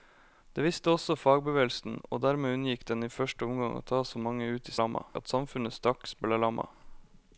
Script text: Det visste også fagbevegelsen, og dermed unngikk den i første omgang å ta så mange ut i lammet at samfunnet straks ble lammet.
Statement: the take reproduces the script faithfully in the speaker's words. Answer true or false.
true